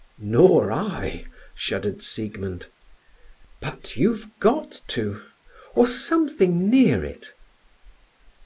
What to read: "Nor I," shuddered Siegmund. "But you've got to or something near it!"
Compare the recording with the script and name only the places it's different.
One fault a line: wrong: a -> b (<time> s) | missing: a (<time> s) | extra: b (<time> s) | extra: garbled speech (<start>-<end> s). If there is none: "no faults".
no faults